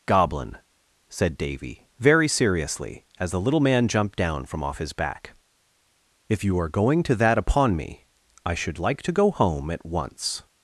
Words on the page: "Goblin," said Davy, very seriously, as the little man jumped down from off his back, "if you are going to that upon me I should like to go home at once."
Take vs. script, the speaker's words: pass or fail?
pass